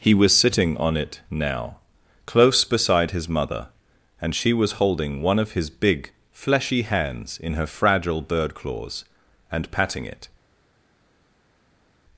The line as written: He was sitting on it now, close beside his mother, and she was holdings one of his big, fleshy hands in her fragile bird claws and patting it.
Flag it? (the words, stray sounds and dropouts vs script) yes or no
yes